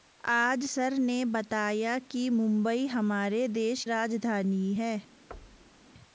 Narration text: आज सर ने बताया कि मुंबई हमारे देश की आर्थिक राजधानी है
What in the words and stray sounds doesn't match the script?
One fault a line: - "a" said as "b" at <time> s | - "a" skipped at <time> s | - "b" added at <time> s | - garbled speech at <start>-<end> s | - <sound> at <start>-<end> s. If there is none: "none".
- "की आर्थिक" skipped at 3.8 s
- thud at 5.3-5.9 s